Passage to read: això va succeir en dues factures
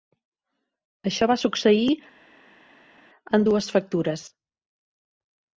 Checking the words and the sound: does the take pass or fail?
pass